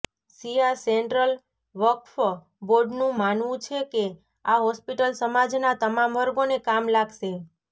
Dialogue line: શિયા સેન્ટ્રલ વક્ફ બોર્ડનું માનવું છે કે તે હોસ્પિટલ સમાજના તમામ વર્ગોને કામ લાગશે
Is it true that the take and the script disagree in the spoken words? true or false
true